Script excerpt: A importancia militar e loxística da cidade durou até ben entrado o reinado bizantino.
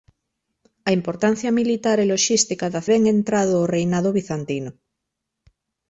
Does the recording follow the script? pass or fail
fail